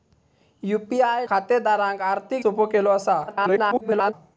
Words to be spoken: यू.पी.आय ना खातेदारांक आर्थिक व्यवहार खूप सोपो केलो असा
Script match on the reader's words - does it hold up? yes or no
no